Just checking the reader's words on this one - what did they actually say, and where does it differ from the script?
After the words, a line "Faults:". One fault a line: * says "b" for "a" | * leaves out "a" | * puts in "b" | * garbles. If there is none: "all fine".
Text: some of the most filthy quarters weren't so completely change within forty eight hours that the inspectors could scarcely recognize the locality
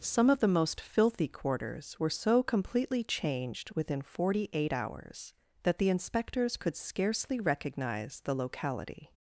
some of the most filthy quarters were so completely changed within forty eight hours that the inspectors could scarcely recognize the locality
Faults:
* says "were" for "weren't"
* says "changed" for "change"